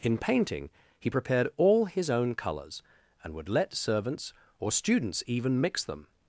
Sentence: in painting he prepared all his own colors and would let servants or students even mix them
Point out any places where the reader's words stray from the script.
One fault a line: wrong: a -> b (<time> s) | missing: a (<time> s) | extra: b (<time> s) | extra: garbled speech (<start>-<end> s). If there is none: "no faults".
no faults